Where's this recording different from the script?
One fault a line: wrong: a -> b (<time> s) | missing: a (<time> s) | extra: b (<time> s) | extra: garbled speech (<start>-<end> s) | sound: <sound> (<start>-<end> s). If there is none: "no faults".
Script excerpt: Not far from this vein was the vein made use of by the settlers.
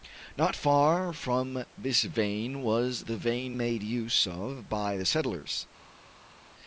no faults